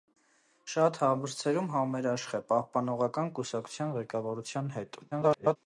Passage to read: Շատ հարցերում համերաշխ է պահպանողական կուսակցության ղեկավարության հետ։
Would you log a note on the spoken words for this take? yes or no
yes